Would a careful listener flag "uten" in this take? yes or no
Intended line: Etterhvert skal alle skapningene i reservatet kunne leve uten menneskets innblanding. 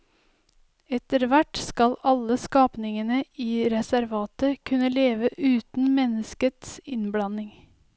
no